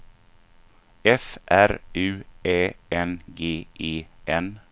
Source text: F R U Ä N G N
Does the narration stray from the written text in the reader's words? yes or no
yes